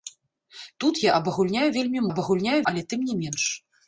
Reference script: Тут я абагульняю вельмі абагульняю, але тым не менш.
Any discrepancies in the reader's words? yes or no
no